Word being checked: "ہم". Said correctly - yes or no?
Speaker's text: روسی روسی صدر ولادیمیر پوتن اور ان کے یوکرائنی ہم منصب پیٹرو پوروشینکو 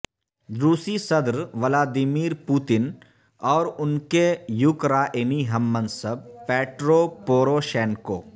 yes